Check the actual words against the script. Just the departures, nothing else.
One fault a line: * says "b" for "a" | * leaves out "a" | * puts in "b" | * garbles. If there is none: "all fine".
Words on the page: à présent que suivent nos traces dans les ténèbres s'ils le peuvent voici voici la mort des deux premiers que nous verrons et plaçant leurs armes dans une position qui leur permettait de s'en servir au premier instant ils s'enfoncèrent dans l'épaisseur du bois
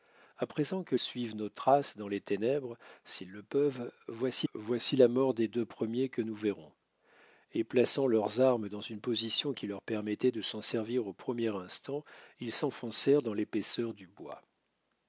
all fine